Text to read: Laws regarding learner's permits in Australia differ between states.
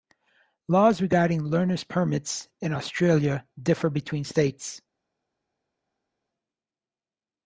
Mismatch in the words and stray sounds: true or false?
false